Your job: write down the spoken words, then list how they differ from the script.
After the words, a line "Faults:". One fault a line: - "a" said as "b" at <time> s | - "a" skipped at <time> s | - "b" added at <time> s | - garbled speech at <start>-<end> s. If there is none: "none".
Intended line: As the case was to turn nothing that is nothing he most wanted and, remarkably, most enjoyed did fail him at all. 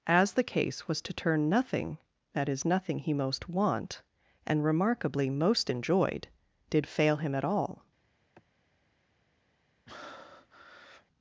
As the case was to turn nothing that is nothing he most want and, remarkably, most enjoyed did fail him at all.
Faults:
- "wanted" said as "want" at 3.5 s